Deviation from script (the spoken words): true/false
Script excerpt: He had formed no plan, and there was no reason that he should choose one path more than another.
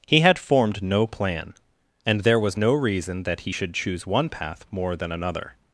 false